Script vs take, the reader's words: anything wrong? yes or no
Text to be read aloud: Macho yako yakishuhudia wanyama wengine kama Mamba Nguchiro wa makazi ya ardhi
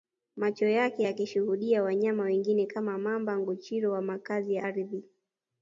yes